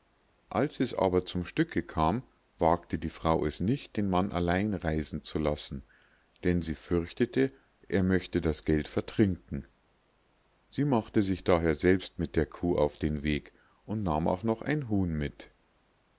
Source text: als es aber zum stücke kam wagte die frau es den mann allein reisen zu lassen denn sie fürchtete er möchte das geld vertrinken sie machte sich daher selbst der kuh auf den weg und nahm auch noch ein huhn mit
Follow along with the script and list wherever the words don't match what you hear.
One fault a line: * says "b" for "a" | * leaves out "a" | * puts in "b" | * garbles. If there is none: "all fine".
* puts in "nicht"
* puts in "mit"